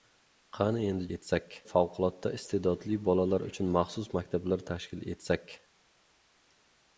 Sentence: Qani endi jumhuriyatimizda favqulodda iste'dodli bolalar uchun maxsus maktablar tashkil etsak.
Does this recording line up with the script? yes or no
no